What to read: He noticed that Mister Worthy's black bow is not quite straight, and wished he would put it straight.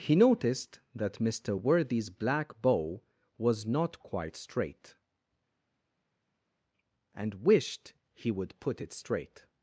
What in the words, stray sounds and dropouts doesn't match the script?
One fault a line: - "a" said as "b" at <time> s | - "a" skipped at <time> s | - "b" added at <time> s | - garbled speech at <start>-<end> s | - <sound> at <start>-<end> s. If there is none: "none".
- "is" said as "was" at 3.4 s